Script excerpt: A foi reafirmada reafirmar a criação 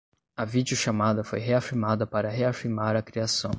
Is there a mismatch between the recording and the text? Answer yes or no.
yes